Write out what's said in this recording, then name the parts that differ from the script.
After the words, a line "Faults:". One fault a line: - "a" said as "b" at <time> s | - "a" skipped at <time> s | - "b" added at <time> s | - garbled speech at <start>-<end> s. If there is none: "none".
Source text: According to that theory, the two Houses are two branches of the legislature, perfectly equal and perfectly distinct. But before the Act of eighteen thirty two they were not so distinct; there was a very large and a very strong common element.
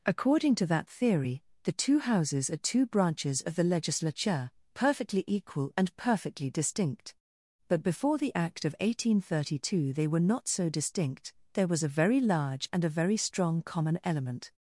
According to that theory, the two Houses are two branches of the legislature, perfectly equal and perfectly distinct. But before the Act of eighteen thirty two they were not so distinct; there was a very large and a very strong common element.
Faults:
none